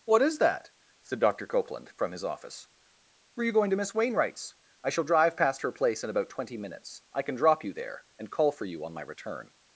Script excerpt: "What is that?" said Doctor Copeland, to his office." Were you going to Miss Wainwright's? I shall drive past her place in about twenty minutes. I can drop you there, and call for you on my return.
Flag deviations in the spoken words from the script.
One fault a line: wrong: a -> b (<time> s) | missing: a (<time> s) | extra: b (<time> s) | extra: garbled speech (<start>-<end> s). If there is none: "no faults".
wrong: to -> from (1.9 s)